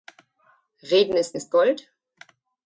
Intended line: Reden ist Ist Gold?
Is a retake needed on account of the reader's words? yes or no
no